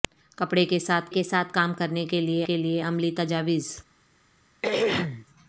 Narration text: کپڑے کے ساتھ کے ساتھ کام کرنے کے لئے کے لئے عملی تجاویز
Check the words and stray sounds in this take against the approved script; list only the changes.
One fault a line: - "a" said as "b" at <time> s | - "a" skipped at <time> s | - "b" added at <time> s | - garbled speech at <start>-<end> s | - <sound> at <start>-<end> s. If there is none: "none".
- throat clearing at 4.6-5.3 s